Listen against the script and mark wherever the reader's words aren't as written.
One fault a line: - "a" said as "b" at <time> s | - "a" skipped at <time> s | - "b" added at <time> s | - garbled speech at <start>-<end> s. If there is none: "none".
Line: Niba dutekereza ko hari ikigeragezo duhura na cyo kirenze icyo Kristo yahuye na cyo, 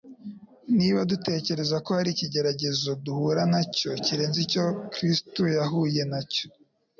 none